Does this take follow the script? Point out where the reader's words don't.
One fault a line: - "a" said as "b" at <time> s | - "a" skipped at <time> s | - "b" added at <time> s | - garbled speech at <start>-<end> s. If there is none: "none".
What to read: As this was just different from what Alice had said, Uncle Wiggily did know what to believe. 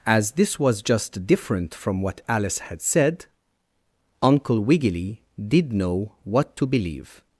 none